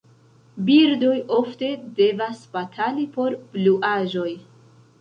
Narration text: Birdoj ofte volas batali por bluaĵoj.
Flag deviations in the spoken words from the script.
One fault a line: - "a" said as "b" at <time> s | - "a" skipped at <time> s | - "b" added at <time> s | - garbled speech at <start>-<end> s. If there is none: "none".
- "volas" said as "devas" at 2.0 s